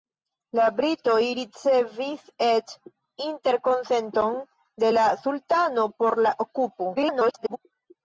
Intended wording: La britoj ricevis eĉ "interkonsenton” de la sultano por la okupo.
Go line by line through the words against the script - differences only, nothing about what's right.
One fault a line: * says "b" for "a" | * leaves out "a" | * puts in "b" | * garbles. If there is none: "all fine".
* garbles